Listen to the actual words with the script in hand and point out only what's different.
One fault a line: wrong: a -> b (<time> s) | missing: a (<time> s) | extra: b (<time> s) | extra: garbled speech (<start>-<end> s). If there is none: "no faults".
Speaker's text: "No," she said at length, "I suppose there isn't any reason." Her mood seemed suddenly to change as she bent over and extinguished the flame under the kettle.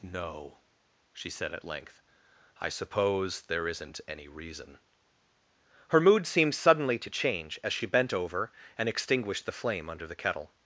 no faults